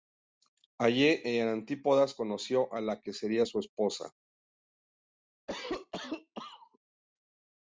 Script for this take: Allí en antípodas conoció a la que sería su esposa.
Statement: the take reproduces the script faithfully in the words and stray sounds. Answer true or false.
false